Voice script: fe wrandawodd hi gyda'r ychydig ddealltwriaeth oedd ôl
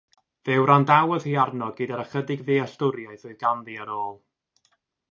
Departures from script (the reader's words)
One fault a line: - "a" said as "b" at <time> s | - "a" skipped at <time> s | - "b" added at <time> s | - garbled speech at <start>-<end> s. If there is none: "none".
- "arno" added at 1.4 s
- "ganddi ar" added at 3.5 s